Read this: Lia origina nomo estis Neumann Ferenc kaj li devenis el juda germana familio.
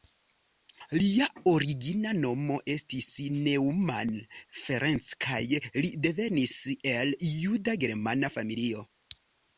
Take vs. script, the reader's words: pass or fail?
pass